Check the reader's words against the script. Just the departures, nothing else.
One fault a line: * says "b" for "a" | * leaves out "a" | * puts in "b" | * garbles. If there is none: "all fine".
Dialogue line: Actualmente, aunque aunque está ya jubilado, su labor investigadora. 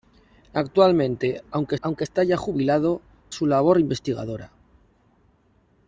all fine